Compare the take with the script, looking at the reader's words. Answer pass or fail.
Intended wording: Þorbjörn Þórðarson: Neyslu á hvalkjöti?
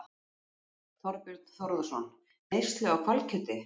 pass